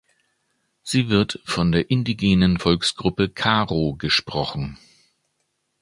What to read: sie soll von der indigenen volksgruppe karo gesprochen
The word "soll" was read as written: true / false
false